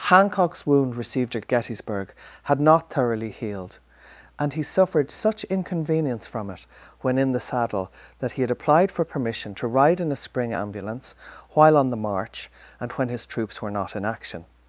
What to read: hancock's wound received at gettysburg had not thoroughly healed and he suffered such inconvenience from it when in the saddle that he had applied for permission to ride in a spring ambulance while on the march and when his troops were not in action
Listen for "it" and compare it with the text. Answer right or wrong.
right